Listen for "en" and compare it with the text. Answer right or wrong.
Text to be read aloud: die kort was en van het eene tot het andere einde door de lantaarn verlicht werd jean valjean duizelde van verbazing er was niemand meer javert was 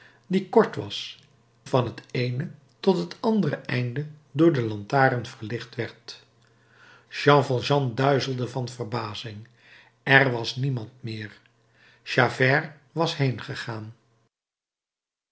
wrong